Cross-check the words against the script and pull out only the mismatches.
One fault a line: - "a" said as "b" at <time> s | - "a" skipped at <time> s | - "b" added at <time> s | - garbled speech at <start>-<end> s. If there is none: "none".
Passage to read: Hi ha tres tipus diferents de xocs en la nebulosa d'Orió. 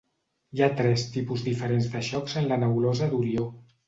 none